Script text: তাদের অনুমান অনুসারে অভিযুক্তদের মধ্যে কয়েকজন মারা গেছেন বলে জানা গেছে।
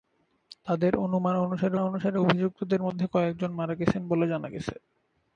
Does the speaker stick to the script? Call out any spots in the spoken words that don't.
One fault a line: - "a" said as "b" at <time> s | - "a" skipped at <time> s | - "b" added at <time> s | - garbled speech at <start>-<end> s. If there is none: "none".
- "অনুসারে" added at 1.8 s